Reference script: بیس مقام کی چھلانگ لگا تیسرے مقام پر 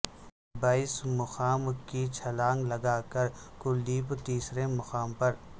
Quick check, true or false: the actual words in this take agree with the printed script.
false